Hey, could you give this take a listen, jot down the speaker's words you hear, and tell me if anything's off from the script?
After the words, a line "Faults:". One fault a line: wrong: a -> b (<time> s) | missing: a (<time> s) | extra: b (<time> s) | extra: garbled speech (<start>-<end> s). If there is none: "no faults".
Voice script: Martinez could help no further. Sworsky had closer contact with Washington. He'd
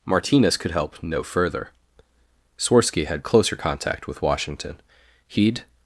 Martinez could help no further. Sworsky had closer contact with Washington. He'd
Faults:
no faults